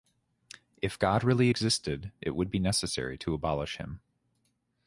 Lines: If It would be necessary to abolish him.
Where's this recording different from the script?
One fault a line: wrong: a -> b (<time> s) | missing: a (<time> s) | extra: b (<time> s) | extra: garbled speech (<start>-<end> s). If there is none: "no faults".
extra: God really existed (1.0 s)